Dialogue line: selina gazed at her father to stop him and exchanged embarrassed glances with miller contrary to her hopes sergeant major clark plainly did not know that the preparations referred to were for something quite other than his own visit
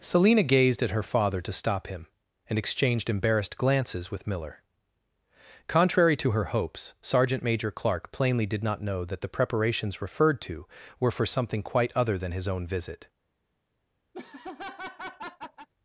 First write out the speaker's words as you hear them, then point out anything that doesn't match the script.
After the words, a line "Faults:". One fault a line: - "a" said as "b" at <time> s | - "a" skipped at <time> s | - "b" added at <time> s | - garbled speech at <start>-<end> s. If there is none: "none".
selina gazed at her father to stop him and exchanged embarrassed glances with miller contrary to her hopes sergeant major clark plainly did not know that the preparations referred to were for something quite other than his own visit
Faults:
none